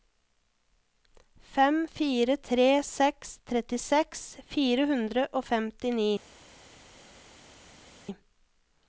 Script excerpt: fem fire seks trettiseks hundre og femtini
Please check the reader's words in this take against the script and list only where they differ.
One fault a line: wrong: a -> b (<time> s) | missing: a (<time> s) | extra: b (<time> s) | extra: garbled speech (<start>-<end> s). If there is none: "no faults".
extra: tre (2.5 s)
extra: fire (4.5 s)